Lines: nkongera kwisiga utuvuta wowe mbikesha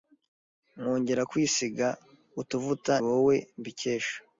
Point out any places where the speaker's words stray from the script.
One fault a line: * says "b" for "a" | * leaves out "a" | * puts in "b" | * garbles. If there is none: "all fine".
all fine